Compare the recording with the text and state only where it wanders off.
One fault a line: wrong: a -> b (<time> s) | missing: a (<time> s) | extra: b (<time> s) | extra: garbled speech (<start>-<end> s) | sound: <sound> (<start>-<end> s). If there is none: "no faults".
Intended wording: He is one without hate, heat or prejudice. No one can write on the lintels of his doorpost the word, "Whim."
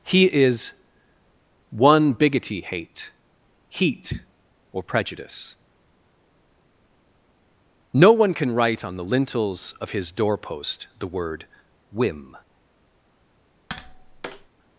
wrong: without -> bigoty (2.1 s)
sound: tap (13.7-14.5 s)